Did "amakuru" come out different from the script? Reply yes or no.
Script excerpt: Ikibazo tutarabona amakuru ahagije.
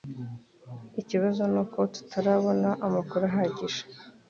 no